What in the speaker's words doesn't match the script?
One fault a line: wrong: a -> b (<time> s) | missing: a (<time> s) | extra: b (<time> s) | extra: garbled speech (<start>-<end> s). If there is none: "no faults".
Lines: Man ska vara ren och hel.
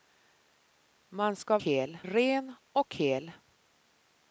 wrong: vara -> hel (1.6 s)